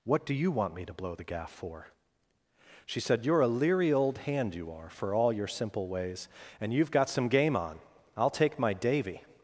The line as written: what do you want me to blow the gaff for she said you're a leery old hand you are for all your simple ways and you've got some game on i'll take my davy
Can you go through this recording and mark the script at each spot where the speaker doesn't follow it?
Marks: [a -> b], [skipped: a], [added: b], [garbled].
what do you want me to blow the gaff for she said you're a leery old hand you are for all your simple ways and you've got some game on i'll take my davy